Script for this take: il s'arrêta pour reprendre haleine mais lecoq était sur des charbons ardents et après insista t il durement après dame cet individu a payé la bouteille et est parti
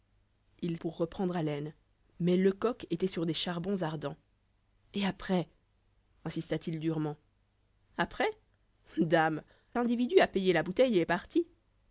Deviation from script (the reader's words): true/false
true